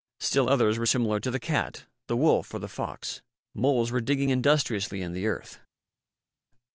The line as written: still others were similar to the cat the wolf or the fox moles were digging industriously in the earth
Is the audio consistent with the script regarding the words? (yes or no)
yes